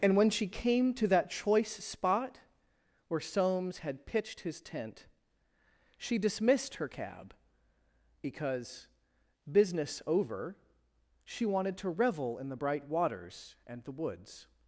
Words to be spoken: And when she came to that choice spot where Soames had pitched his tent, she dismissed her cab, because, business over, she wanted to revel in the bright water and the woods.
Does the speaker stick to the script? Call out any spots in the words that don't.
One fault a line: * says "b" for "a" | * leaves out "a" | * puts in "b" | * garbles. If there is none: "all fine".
* says "waters" for "water"